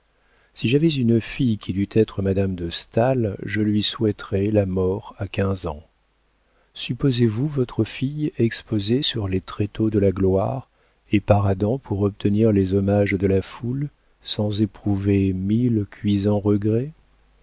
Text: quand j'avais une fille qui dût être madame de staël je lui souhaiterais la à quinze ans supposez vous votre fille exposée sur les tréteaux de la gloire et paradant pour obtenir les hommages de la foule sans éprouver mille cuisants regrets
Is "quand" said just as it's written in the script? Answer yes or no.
no